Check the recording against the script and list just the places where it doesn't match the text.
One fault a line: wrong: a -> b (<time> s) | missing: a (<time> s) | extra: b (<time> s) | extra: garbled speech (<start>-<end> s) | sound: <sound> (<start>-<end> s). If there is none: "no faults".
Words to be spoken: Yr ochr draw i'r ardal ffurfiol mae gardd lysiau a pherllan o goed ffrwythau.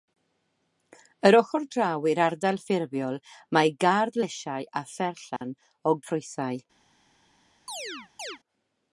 sound: dropout (5.4-5.4 s)
missing: goed (6.0 s)
sound: chirp (7.7-8.4 s)